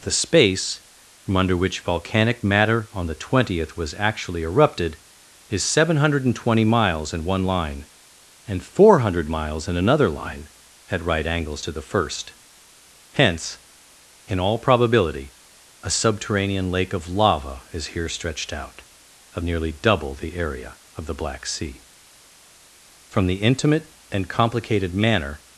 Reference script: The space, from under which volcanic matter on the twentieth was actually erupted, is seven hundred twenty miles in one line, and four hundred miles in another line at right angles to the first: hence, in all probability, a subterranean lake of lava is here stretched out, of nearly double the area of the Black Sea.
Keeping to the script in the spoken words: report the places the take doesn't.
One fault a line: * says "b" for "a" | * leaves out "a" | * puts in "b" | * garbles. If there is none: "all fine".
* puts in "From the intimate and complicated manner"